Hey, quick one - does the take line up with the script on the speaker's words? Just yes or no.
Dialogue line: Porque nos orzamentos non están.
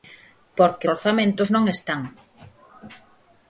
no